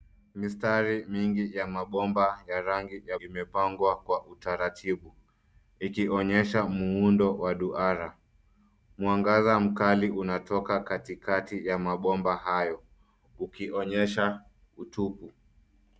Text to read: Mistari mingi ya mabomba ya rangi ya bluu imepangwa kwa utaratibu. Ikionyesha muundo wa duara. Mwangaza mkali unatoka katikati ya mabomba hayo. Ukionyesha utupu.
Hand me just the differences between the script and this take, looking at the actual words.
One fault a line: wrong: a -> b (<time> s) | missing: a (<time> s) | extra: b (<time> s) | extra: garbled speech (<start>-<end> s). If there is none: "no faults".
missing: bluu (3.2 s)